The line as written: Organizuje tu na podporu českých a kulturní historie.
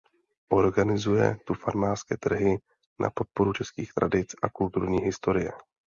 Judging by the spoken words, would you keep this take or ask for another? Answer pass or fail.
fail